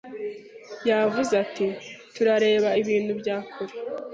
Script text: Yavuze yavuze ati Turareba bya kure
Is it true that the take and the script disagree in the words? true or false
true